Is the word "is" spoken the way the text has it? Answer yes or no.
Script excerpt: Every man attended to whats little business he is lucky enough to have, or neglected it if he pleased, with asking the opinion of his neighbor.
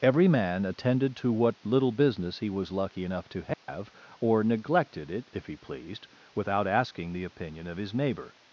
no